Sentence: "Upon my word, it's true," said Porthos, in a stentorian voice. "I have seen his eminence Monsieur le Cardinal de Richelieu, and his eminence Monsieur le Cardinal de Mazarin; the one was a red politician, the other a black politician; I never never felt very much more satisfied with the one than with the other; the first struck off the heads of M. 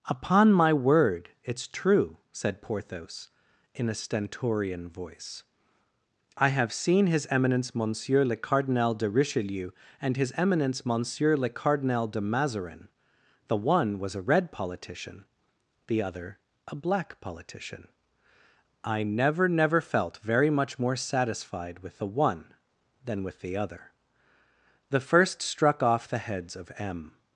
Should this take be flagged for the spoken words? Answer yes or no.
no